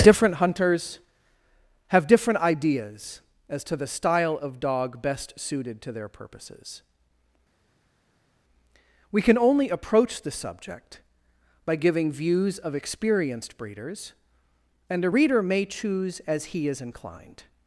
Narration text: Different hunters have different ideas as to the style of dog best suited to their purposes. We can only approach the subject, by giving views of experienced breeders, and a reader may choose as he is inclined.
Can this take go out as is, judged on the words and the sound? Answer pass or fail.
pass